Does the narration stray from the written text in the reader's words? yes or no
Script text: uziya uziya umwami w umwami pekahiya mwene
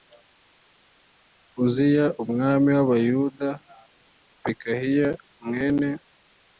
yes